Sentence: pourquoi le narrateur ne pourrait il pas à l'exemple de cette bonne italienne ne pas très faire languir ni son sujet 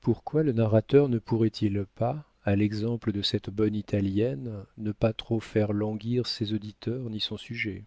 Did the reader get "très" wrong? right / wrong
wrong